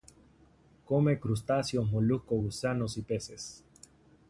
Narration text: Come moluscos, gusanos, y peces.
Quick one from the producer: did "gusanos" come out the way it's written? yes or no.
yes